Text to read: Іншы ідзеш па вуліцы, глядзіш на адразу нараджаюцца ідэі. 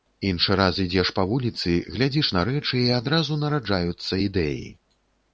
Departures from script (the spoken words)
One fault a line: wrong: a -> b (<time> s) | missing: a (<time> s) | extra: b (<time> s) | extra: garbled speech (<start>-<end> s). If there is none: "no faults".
extra: раз (0.6 s)
extra: рэчы і (2.5 s)